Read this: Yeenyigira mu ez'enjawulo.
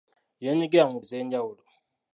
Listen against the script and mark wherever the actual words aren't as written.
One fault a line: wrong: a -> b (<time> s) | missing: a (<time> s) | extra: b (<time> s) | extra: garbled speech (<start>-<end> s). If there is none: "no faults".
no faults